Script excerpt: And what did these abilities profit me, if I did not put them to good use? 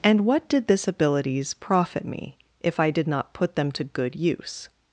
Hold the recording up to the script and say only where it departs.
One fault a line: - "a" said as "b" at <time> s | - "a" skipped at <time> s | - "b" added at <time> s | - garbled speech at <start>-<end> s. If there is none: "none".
- "these" said as "this" at 0.7 s